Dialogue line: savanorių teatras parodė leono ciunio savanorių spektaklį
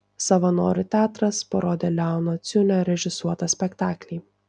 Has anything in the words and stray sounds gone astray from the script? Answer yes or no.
yes